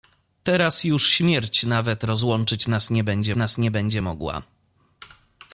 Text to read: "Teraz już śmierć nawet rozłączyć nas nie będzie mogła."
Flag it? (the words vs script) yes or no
yes